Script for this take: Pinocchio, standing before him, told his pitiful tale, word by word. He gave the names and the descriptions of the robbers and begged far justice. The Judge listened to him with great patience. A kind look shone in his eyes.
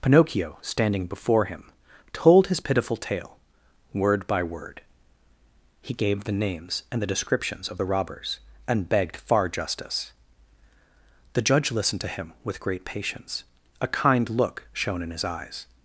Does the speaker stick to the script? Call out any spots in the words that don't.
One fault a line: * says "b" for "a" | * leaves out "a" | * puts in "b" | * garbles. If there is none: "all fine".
all fine